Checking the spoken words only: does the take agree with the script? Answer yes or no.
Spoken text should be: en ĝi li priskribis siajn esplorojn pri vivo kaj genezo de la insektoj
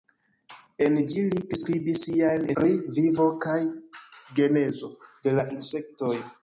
no